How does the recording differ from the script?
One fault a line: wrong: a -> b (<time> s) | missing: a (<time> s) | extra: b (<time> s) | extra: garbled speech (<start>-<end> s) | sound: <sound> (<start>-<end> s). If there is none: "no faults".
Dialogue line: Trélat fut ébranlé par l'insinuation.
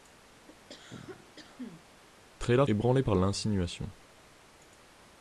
sound: cough (0.5-1.9 s)
missing: fut (2.7 s)